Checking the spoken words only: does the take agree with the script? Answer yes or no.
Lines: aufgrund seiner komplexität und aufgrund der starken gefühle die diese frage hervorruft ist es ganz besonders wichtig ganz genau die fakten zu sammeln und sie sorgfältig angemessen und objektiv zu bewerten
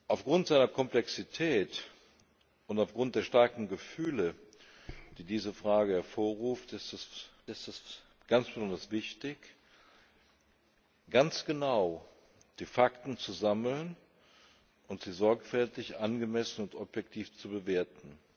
no